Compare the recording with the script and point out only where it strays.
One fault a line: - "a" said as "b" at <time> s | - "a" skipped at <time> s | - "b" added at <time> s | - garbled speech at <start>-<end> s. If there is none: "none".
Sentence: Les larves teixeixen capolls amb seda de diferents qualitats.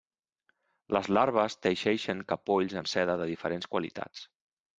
none